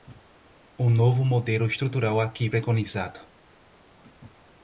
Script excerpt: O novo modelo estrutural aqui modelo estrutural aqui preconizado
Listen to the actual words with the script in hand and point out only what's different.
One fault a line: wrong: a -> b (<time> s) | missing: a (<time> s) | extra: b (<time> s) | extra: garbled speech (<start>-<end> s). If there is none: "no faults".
missing: modelo estrutural aqui (2.5 s)